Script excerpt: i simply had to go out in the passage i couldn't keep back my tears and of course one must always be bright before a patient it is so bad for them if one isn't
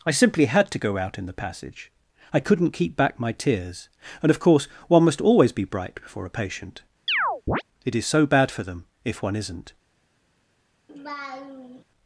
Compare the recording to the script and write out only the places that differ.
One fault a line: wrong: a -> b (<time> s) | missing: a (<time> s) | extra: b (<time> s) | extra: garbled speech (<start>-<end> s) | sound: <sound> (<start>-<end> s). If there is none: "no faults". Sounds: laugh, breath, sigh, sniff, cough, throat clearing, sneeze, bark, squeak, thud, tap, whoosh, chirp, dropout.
sound: chirp (7.1-7.6 s)
sound: laugh (10.9-11.8 s)